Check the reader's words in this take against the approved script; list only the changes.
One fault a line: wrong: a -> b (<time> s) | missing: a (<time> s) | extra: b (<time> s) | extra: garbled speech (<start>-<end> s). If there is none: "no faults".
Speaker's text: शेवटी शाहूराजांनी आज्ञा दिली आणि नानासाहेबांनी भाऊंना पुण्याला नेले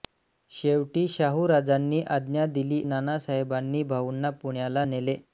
missing: आणि (2.8 s)